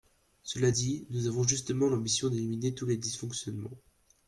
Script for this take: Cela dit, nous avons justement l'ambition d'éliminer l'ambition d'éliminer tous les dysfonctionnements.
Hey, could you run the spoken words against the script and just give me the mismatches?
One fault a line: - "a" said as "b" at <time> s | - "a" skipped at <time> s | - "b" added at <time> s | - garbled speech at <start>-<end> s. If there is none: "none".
- "l'ambition d'éliminer" skipped at 2.7 s